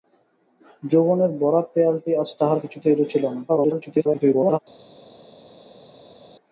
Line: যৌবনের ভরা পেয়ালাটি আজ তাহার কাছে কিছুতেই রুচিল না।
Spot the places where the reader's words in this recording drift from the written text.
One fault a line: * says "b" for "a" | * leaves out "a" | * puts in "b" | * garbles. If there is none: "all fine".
* leaves out "কাছে"
* garbles